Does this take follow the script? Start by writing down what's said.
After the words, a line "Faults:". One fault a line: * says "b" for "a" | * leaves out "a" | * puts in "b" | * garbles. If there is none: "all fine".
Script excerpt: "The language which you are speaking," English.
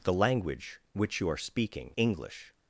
"The language which you are speaking," English.
Faults:
all fine